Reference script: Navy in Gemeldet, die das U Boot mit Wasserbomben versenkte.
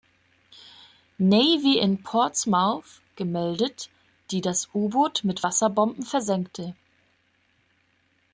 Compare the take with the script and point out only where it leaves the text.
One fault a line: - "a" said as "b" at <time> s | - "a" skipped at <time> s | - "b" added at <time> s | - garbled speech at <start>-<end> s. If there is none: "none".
- "Portsmouth" added at 2.0 s